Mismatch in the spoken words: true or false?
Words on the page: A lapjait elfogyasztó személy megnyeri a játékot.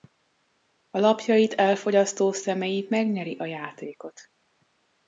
false